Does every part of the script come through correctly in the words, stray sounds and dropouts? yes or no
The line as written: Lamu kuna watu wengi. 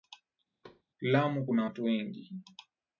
no